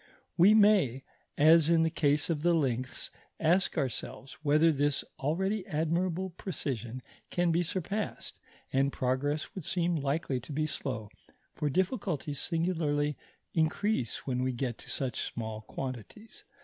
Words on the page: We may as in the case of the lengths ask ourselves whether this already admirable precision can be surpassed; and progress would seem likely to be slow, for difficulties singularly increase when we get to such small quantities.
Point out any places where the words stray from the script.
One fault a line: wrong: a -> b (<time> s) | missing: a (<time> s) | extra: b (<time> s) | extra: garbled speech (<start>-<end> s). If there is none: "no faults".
no faults